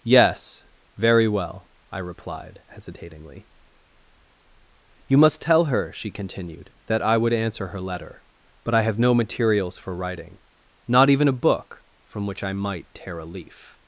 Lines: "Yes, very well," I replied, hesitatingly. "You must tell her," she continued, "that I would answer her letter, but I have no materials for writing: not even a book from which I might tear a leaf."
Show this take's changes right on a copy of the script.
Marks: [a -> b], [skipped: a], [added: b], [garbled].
"Yes, very well," I replied, hesitatingly. "You must tell her," she continued, "that I would answer her letter, but I have no materials for writing: not even a book from which I might tear a leaf."